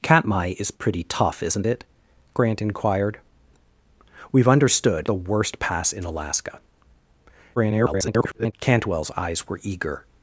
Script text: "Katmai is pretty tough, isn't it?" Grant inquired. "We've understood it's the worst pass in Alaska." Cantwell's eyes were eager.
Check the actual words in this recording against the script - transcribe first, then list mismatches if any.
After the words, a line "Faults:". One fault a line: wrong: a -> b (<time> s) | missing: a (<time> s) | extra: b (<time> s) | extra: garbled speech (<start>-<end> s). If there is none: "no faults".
"Katmai is pretty tough, isn't it?" Grant inquired. "We've understood the worst pass in Alaska." [garbled] Cantwell's eyes were eager.
Faults:
missing: it's (5.1 s)
extra: garbled speech (7.6-8.5 s)